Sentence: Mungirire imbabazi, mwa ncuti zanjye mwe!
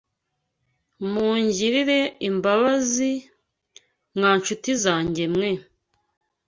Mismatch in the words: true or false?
false